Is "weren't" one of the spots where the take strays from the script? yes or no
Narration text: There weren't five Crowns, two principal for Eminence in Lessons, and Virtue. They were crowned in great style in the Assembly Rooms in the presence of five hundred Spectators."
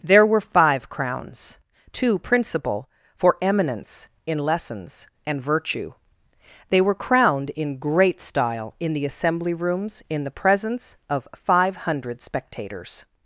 yes